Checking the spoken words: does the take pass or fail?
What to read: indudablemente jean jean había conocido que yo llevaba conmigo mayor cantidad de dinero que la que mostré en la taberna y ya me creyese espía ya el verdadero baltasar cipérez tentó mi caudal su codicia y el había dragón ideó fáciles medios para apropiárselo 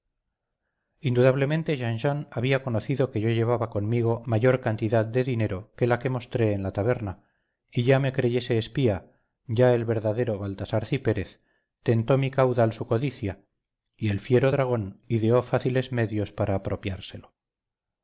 fail